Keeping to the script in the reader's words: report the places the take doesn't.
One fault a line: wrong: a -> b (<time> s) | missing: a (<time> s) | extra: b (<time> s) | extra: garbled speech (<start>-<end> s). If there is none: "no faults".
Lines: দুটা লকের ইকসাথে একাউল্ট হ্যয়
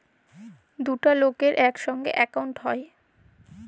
no faults